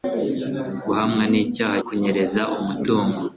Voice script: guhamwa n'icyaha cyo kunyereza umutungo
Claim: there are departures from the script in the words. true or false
true